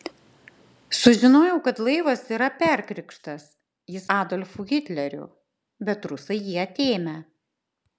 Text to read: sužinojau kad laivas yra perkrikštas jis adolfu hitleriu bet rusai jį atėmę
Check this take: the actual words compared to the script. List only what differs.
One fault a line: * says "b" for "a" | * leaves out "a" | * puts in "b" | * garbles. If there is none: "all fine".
all fine